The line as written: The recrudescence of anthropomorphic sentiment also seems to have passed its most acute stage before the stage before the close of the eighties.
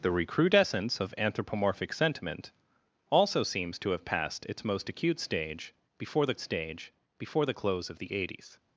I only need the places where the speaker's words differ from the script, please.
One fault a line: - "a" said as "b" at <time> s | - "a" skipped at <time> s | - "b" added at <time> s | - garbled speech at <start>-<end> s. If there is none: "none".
none